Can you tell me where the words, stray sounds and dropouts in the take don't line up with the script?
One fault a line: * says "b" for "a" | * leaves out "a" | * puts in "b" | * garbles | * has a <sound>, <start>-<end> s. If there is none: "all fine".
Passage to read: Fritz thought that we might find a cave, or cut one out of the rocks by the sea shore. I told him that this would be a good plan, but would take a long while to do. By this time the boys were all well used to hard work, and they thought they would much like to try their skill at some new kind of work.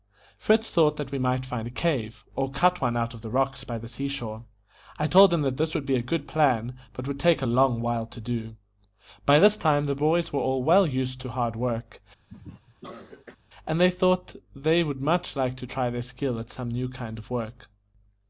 * has a cough, 12.3-13.4 s